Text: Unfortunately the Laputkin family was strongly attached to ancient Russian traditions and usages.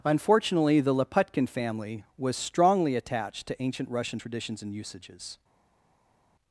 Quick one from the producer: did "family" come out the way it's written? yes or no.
yes